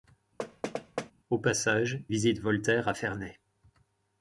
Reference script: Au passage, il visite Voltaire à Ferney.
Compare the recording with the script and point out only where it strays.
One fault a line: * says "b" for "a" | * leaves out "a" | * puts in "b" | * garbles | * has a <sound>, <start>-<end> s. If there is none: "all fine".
* has a thud, 0.4-1.1 s
* leaves out "il"